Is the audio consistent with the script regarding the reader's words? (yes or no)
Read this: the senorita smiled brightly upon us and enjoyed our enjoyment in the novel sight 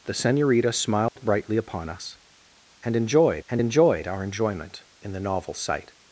no